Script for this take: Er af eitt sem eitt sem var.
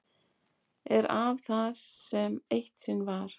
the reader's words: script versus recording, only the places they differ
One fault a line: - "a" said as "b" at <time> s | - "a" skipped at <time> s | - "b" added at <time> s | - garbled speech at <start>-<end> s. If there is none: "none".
- "eitt" said as "það" at 1.5 s
- "sem" said as "sinn" at 2.9 s